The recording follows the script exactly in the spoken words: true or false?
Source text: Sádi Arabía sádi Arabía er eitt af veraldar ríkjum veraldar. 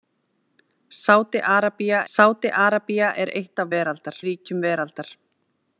true